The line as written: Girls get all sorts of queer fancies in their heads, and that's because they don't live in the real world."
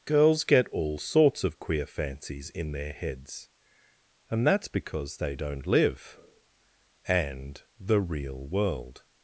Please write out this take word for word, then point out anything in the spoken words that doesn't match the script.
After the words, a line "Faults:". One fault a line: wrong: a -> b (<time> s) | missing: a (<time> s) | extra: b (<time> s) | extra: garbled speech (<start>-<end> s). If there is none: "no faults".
Girls get all sorts of queer fancies in their heads, and that's because they don't live and the real world."
Faults:
wrong: in -> and (7.1 s)